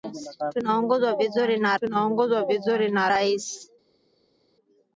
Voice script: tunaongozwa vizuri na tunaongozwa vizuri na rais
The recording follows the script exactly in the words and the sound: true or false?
true